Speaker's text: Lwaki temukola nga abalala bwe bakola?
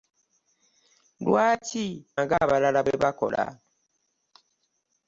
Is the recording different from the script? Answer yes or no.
yes